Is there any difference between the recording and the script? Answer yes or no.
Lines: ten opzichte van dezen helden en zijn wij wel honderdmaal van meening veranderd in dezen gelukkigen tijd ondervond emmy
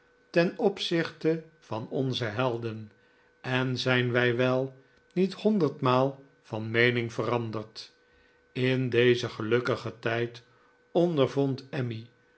yes